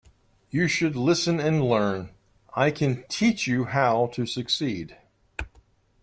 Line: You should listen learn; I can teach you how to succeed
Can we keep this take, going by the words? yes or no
no